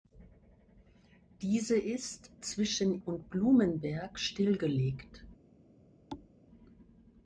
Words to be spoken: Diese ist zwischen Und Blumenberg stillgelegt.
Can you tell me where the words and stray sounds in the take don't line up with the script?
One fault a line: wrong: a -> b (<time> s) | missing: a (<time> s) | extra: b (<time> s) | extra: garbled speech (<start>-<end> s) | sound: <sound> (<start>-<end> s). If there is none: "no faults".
sound: thud (6.1-6.3 s)